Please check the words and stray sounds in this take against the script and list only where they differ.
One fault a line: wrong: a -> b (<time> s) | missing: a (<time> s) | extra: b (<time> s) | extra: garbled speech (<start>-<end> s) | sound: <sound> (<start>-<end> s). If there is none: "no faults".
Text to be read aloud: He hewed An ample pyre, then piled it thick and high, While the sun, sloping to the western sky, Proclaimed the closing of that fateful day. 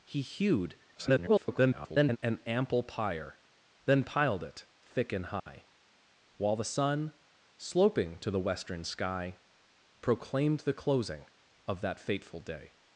extra: garbled speech (0.9-2.2 s)
sound: dropout (5.4-5.5 s)